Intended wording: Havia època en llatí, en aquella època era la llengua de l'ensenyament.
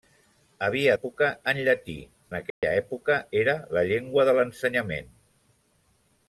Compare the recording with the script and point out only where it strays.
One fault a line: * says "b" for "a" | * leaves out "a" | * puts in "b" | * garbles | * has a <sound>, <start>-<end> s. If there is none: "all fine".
* has a dropout, 2.5-2.6 s